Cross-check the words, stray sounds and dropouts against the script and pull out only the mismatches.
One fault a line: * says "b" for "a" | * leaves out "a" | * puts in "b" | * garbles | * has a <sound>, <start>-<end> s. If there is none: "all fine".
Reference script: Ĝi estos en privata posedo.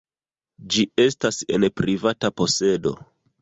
* says "estas" for "estos"